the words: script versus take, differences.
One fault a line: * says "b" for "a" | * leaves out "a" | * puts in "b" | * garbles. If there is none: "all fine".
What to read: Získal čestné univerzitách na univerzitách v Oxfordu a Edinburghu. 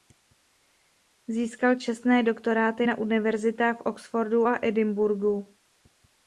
* says "doktoráty" for "univerzitách"